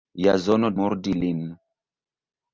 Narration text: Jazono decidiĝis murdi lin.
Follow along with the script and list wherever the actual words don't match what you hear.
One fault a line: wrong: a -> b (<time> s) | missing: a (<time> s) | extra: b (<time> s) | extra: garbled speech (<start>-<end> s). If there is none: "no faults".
missing: decidiĝis (0.7 s)